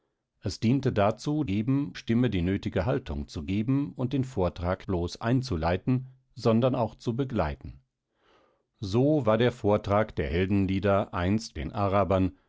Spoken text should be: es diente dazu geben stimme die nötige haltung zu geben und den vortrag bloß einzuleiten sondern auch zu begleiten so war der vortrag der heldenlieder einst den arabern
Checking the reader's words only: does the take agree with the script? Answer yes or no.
yes